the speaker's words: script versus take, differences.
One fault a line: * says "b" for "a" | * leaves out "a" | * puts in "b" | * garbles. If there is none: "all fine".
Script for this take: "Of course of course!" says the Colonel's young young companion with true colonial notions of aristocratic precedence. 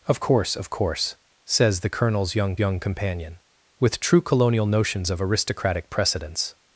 all fine